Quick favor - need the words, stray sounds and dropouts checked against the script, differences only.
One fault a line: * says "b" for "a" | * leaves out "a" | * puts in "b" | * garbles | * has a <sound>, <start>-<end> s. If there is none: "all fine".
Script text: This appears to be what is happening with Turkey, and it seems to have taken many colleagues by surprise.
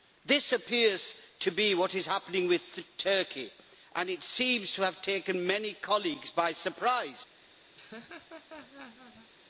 * has a laugh, 7.8-9.3 s